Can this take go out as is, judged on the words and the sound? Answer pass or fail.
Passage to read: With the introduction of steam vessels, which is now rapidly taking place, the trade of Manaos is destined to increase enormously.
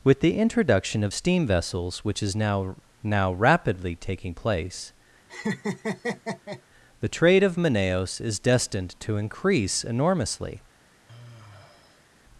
fail